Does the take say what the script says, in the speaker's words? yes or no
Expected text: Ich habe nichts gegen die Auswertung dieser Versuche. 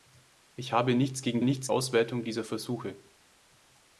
no